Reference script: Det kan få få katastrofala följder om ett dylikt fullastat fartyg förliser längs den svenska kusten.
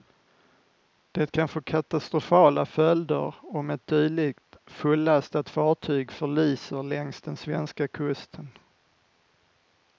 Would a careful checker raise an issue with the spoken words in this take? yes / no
yes